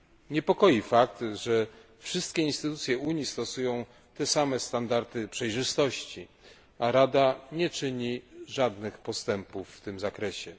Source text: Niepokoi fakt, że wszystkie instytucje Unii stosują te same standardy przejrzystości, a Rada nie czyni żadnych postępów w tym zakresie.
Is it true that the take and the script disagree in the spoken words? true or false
false